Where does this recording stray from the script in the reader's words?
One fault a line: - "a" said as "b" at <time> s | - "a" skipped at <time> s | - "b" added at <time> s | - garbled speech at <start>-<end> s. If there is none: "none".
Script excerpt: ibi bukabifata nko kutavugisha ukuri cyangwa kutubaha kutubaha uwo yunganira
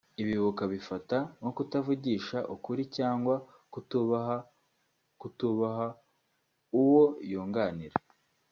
none